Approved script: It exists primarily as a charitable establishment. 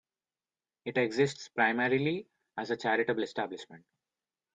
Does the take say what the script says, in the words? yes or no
yes